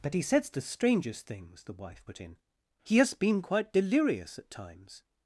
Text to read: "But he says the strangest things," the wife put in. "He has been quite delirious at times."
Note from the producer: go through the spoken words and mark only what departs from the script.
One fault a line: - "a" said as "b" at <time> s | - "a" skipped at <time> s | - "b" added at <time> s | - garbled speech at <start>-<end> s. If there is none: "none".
none